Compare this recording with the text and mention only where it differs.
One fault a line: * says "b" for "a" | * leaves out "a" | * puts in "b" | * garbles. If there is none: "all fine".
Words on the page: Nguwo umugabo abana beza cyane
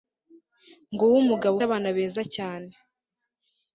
all fine